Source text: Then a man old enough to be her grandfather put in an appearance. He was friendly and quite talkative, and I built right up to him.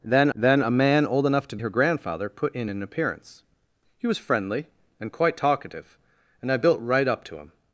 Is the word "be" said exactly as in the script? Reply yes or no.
no